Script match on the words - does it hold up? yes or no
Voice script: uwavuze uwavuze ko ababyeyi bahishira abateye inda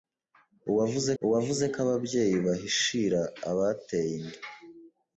yes